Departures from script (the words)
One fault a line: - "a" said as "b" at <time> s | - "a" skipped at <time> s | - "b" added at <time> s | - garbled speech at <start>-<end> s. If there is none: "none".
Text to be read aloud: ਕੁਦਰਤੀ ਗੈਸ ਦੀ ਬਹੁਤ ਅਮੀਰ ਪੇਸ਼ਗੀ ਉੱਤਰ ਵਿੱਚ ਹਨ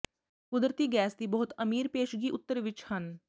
none